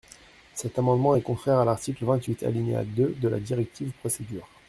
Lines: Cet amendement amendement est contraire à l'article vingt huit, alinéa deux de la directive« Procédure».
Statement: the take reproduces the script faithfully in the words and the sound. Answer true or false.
false